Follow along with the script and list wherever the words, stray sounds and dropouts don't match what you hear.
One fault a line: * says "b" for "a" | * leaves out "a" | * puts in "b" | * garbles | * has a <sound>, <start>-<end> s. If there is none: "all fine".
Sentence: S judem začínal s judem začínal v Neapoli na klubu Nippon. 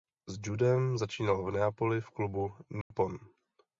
* leaves out "s judem začínal"
* says "v" for "na"
* has a dropout, 2.8-2.9 s